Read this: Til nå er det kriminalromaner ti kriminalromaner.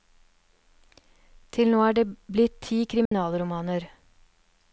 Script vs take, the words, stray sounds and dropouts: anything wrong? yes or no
yes